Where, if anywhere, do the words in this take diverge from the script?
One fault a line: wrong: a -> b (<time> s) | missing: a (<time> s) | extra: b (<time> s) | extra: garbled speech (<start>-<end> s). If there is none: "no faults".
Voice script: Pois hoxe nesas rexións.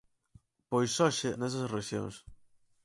no faults